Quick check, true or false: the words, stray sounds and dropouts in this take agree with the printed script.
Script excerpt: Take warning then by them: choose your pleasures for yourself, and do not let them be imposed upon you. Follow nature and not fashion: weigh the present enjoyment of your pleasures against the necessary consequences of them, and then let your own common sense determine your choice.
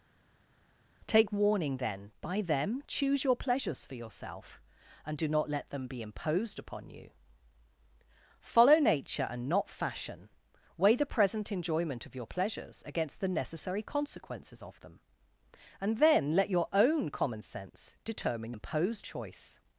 false